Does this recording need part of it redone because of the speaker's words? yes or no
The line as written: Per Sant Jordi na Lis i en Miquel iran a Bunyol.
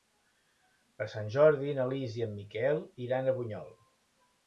no